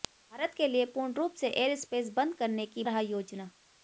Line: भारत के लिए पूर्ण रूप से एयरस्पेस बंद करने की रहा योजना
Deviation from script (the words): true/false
false